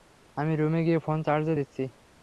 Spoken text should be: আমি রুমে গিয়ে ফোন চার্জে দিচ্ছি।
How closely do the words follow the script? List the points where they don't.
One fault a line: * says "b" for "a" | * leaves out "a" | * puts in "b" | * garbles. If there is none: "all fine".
all fine